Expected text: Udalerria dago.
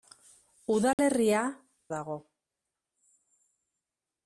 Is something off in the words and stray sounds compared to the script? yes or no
yes